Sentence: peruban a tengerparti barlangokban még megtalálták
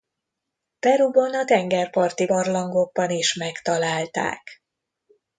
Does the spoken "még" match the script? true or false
false